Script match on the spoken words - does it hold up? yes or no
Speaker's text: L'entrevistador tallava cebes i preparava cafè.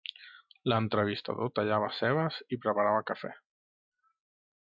yes